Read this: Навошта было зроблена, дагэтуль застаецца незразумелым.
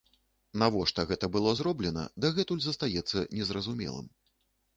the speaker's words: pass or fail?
fail